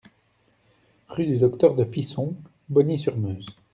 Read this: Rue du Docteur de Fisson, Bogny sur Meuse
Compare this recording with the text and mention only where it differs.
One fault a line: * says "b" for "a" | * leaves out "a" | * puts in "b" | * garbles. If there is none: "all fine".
all fine